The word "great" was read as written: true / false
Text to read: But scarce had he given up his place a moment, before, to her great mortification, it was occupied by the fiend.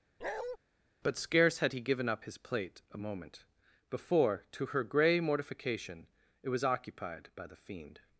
false